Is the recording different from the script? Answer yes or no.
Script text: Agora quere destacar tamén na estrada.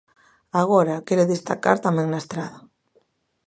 no